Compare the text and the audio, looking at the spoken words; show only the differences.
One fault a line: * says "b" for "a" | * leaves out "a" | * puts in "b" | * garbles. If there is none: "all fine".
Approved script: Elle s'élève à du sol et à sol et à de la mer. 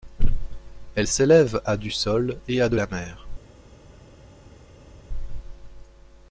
* leaves out "sol et à"